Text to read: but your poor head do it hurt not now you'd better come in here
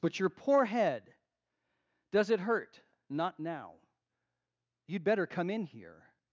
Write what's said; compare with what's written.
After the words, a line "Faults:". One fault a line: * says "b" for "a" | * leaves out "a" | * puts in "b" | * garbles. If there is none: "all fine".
but your poor head does it hurt not now you'd better come in here
Faults:
* says "does" for "do"